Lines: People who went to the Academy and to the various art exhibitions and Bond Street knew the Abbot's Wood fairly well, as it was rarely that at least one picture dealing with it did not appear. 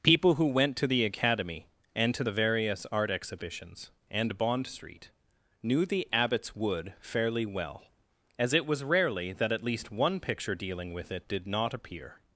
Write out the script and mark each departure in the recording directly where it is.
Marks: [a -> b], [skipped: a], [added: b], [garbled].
People who went to the Academy and to the various art exhibitions and Bond Street knew the Abbot's Wood fairly well, as it was rarely that at least one picture dealing with it did not appear.